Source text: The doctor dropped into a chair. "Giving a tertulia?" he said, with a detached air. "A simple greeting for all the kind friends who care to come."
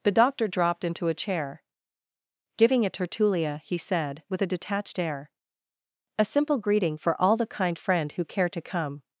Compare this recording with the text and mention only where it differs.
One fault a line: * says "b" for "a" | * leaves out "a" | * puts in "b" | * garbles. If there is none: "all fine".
* says "friend" for "friends"